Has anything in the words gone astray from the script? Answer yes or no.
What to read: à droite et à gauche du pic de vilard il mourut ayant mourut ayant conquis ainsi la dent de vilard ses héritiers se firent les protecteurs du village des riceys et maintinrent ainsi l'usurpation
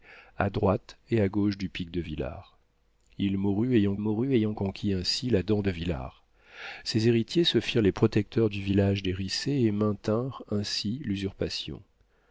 no